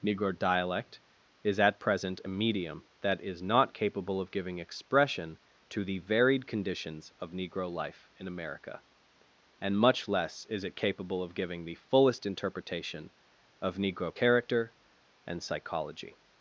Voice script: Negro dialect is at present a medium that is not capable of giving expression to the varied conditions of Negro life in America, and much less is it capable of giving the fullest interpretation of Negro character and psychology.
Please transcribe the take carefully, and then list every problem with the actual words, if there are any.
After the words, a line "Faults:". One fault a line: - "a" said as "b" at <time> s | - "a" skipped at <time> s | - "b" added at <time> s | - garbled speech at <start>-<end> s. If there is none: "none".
Negro dialect is at present a medium that is not capable of giving expression to the varied conditions of Negro life in America, and much less is it capable of giving the fullest interpretation of Negro character and psychology.
Faults:
none